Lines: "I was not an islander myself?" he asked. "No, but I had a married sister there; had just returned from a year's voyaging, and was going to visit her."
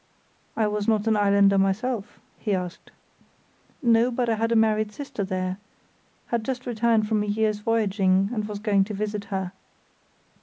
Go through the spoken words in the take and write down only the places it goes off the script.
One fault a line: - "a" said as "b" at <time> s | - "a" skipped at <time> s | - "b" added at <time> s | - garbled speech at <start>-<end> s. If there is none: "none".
none